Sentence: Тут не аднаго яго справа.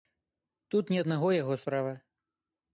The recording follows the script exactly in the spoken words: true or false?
true